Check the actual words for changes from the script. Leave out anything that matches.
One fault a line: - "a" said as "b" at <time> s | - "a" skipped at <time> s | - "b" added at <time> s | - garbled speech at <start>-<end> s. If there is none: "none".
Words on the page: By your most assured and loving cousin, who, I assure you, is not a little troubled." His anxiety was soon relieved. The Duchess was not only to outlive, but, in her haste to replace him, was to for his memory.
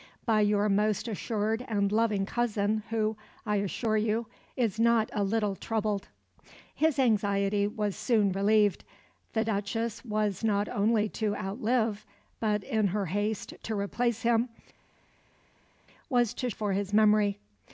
none